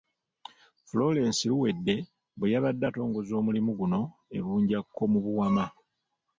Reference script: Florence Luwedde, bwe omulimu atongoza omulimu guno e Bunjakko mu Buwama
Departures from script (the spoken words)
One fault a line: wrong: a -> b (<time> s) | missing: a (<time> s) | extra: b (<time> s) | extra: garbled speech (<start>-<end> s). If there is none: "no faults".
wrong: omulimu -> yabadde (2.5 s)